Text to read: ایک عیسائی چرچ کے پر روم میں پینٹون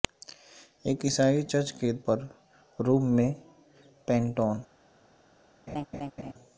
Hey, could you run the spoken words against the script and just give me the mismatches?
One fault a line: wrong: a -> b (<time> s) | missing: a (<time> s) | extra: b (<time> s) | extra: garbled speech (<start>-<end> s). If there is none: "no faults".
no faults